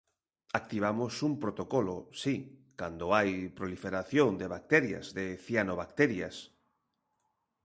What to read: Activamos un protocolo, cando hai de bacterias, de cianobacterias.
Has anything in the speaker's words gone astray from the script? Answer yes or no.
yes